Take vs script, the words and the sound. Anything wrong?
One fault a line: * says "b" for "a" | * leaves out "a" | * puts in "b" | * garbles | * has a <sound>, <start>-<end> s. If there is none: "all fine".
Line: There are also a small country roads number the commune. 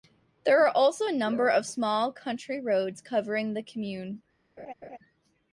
* puts in "number of"
* says "covering" for "number"
* has a laugh, 4.6-5.0 s